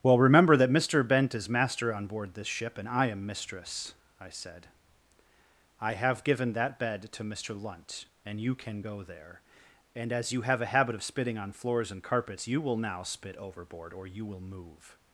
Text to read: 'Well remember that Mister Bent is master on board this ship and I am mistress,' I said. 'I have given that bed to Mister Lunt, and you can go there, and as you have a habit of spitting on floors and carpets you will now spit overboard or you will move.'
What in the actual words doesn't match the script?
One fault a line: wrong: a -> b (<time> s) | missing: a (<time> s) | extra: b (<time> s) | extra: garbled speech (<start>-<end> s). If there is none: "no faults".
no faults